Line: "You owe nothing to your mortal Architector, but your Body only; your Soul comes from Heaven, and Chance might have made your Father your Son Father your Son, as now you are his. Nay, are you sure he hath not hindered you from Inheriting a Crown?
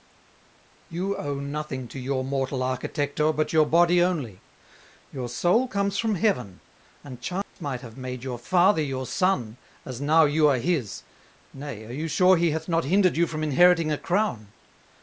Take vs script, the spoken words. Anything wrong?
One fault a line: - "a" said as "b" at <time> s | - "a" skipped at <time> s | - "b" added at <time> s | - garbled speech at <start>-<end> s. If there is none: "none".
- "Father your Son" skipped at 9.6 s